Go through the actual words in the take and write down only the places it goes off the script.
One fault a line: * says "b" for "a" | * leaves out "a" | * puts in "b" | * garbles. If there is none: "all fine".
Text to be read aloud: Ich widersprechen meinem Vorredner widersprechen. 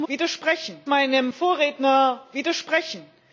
all fine